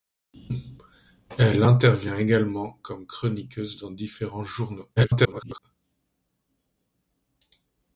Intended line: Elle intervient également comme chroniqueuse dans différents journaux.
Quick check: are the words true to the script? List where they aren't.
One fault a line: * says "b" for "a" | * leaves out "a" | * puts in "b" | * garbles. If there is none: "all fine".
* garbles